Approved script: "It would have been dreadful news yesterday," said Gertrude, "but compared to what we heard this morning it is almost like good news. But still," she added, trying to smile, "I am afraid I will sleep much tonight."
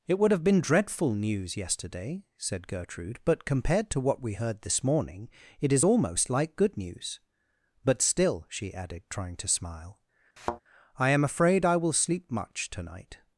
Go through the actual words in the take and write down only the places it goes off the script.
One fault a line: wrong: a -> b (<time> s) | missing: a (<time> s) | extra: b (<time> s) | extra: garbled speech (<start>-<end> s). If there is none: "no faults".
no faults